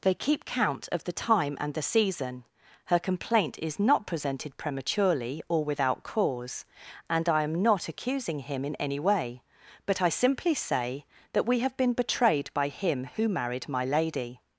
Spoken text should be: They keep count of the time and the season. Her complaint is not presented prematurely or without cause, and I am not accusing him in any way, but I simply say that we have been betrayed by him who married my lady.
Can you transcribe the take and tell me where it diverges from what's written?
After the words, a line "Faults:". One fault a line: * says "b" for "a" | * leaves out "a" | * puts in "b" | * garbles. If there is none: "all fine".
They keep count of the time and the season. Her complaint is not presented prematurely or without cause, and I am not accusing him in any way, but I simply say that we have been betrayed by him who married my lady.
Faults:
all fine